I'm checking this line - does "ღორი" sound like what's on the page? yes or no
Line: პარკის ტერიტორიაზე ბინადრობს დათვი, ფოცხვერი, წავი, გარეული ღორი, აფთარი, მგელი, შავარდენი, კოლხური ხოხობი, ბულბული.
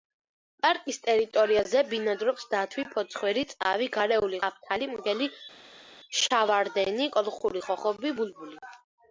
no